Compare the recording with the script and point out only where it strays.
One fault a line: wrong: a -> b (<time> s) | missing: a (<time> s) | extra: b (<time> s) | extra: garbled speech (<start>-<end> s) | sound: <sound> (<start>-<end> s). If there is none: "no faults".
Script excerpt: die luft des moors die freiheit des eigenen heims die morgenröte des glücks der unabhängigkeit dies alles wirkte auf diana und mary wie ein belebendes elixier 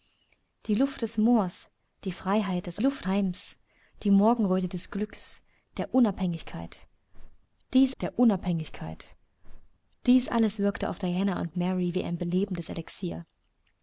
wrong: eigenen -> luft (2.8 s)
extra: der unabhängigkeit dies (8.0 s)